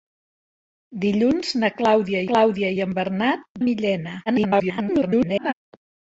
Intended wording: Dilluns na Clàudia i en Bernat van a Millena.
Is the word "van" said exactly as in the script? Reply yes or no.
no